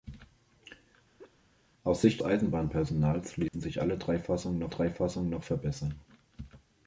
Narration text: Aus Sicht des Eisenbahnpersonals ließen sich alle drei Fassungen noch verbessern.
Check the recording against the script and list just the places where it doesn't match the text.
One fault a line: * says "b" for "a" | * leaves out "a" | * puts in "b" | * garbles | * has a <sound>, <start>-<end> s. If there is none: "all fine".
* has a laugh, 1.2-1.4 s
* leaves out "des"
* has a dropout, 3.5-3.5 s
* puts in "drei Fassungen noch"